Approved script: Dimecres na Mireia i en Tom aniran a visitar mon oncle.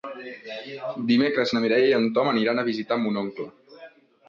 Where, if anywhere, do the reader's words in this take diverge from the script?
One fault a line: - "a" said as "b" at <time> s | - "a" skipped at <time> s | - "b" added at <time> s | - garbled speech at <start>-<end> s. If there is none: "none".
none